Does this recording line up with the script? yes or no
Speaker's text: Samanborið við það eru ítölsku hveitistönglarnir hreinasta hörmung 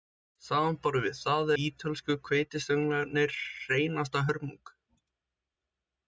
no